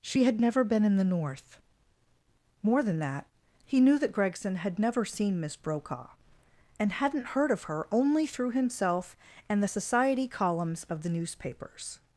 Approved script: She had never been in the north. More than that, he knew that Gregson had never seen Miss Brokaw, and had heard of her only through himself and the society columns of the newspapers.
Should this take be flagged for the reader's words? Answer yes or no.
yes